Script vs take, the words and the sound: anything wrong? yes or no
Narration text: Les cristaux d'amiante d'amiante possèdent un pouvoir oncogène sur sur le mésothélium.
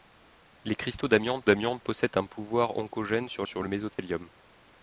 yes